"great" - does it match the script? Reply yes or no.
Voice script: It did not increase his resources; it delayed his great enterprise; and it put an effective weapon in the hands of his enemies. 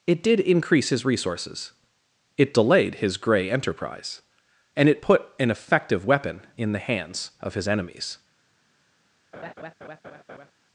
no